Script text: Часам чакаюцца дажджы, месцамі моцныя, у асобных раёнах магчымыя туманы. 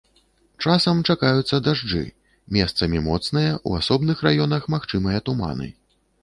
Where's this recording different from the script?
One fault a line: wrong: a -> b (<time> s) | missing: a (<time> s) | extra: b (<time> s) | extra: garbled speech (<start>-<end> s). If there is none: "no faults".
no faults